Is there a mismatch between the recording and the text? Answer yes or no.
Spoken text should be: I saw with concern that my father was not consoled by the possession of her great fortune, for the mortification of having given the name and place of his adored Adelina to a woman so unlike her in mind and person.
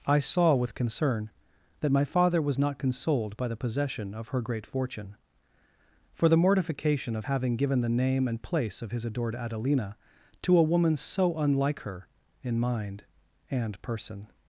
no